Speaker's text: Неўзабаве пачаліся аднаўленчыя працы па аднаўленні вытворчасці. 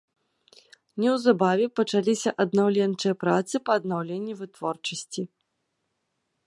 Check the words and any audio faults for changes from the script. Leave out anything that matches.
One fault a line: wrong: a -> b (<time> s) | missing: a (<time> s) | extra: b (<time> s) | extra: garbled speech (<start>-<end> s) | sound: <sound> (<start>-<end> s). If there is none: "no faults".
no faults